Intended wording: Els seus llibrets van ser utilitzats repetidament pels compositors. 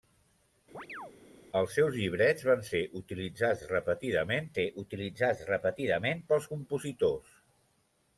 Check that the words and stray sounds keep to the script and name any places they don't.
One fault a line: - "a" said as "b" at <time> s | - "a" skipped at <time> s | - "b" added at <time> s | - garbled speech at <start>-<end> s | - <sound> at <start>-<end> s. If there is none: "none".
- chirp at 0.7-1.1 s
- "ser utilitzats repetidament" added at 4.5 s